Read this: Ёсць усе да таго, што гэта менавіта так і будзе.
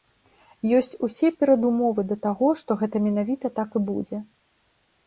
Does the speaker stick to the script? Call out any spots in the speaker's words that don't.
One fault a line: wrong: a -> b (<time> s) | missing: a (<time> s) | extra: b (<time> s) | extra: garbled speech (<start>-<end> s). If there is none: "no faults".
extra: перадумовы (1.4 s)